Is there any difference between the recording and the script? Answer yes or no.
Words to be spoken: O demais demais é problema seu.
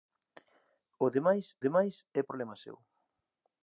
no